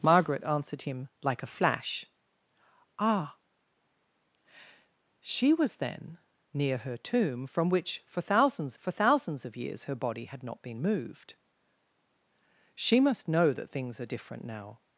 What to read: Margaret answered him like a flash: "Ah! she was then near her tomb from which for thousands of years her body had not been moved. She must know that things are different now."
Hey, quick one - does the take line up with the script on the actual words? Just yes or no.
no